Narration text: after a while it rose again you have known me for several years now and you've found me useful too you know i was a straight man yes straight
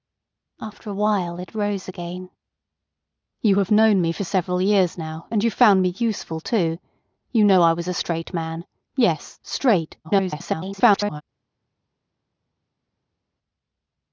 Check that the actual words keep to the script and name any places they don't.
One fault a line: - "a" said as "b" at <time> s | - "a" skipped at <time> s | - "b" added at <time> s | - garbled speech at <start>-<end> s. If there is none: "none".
- garbled speech at 10.0-11.2 s